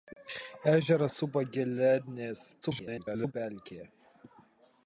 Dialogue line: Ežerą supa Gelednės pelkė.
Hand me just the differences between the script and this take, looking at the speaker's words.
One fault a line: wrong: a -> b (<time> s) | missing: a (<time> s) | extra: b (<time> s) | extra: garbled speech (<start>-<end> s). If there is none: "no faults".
extra: garbled speech (2.6-3.3 s)